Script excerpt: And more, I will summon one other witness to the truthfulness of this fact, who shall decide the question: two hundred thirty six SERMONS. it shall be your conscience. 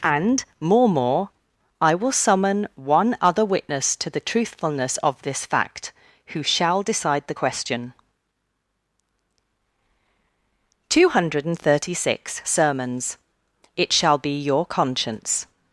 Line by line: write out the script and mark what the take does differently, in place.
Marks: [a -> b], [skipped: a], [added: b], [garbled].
And more, [added: more] I will summon one other witness to the truthfulness of this fact, who shall decide the question: two hundred thirty six SERMONS. it shall be your conscience.